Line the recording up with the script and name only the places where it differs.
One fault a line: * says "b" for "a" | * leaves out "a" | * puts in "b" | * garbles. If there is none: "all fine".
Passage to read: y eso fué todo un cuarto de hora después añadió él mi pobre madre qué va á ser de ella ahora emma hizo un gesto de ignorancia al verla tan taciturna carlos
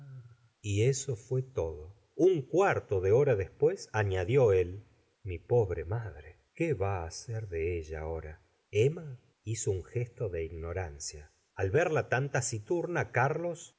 all fine